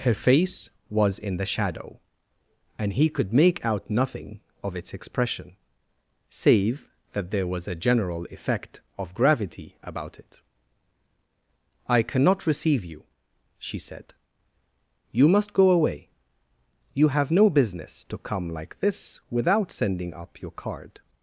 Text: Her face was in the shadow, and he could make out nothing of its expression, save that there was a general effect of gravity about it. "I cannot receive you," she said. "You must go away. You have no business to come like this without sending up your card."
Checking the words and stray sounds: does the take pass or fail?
pass